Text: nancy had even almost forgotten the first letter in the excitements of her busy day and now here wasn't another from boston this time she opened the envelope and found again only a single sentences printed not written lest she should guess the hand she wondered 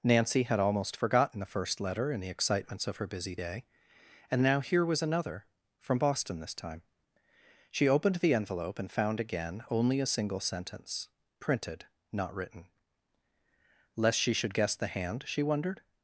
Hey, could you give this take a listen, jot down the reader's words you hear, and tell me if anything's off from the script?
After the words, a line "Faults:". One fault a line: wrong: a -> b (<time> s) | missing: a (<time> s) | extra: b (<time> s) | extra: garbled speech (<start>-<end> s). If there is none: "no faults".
nancy had almost forgotten the first letter in the excitements of her busy day and now here was another from boston this time she opened the envelope and found again only a single sentence printed not written lest she should guess the hand she wondered
Faults:
missing: even (0.6 s)
wrong: wasn't -> was (4.8 s)
wrong: sentences -> sentence (10.4 s)